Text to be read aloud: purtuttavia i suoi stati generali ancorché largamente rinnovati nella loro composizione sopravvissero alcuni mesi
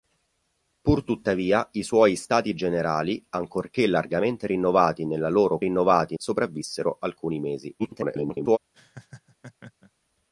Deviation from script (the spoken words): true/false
true